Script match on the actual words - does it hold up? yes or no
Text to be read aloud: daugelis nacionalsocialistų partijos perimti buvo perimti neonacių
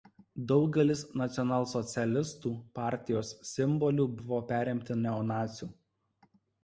no